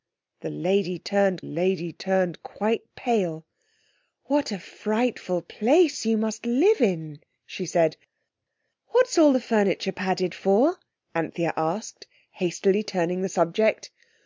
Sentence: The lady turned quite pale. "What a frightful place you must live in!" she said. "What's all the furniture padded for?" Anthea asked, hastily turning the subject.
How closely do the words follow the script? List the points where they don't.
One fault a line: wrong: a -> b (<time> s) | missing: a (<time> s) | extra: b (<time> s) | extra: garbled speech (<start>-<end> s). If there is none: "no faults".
extra: lady turned (1.4 s)